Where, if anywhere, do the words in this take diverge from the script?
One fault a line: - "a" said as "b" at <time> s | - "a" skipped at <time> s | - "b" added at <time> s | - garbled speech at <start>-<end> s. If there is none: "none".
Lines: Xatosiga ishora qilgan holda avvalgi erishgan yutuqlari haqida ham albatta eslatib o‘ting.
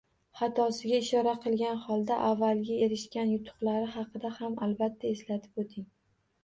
none